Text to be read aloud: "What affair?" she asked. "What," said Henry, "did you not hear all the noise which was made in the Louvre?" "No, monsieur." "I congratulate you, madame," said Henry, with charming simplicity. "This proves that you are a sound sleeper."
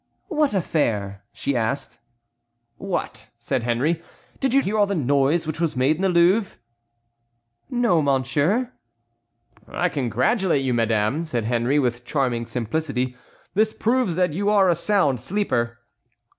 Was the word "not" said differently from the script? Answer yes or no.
yes